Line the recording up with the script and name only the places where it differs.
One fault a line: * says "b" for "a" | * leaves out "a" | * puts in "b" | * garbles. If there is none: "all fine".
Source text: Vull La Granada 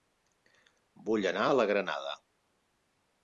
* puts in "anar a"